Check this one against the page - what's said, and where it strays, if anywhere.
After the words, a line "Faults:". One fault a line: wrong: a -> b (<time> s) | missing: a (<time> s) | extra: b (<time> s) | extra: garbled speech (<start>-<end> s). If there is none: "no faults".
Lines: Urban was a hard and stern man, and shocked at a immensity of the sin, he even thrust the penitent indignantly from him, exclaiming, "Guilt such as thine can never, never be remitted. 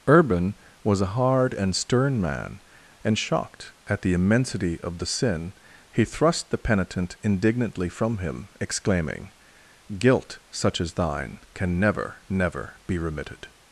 Urban was a hard and stern man, and shocked at the immensity of the sin, he thrust the penitent indignantly from him, exclaiming, "Guilt such as thine can never, never be remitted.
Faults:
wrong: a -> the (4.0 s)
missing: even (6.0 s)